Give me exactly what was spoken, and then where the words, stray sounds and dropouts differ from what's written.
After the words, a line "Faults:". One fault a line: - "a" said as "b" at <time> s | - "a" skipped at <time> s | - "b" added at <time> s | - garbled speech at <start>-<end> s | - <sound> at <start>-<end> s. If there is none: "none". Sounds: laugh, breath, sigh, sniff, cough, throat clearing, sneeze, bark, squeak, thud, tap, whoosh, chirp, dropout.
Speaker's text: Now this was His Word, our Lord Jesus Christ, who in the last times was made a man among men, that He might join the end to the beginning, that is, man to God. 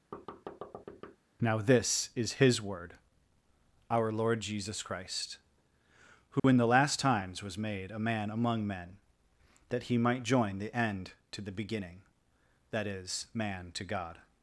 Now this is His Word, our Lord Jesus Christ, who in the last times was made a man among men, that He might join the end to the beginning, that is, man to God.
Faults:
- thud at 0.1-1.2 s
- "was" said as "is" at 2.1 s
- dropout at 6.4-6.4 s